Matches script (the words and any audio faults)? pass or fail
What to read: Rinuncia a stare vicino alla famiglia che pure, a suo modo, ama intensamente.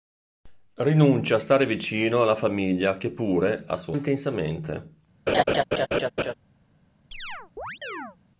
fail